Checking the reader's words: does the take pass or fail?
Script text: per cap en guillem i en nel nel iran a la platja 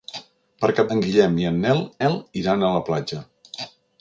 pass